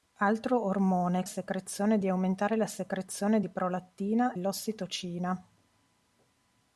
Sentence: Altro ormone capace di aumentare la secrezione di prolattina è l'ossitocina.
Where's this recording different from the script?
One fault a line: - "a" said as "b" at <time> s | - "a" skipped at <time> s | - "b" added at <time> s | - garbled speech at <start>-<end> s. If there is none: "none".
- "capace" said as "secrezione" at 1.2 s
- "è" skipped at 4.4 s